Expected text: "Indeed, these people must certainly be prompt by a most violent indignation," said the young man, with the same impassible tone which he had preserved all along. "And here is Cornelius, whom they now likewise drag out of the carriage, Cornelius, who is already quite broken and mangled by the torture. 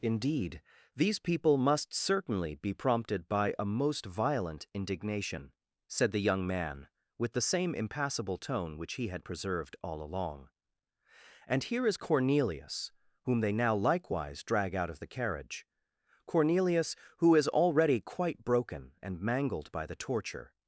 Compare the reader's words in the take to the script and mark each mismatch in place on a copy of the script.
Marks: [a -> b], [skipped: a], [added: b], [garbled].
"Indeed, these people must certainly be [prompt -> prompted] by a most violent indignation," said the young man, with the same impassible tone which he had preserved all along. "And here is Cornelius, whom they now likewise drag out of the carriage, Cornelius, who is already quite broken and mangled by the torture.